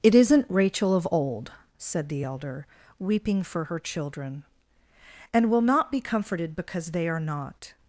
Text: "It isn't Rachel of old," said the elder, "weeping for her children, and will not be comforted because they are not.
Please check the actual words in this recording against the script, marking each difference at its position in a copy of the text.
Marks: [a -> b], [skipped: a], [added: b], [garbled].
"It isn't Rachel of old," said the elder, "weeping for her children, and will not be comforted because they are not.